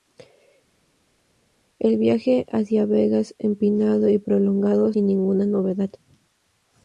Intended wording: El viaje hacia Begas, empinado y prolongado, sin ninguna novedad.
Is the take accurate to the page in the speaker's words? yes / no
yes